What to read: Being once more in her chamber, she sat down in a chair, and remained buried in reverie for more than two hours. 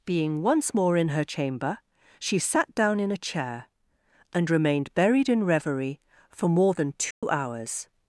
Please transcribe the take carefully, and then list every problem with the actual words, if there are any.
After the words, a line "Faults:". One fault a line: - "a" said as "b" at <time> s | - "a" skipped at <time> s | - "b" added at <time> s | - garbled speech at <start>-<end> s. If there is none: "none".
Being once more in her chamber, she sat down in a chair, and remained buried in reverie for more than two hours.
Faults:
none